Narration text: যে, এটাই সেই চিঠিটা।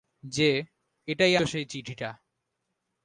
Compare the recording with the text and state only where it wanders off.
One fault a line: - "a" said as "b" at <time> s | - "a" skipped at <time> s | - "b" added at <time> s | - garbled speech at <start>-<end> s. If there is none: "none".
none